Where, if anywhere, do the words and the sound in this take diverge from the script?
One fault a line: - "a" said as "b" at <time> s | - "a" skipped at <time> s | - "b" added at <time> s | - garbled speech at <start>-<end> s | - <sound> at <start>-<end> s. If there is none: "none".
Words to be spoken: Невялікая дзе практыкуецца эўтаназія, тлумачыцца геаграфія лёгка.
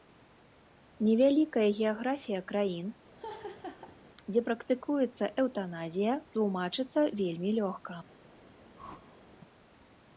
- "геаграфія краін" added at 1.8 s
- laugh at 3.2-4.0 s
- "геаграфія" said as "вельмі" at 7.2 s
- whoosh at 8.8-9.2 s